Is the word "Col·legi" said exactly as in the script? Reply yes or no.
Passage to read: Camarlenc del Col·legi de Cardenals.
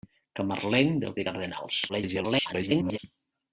no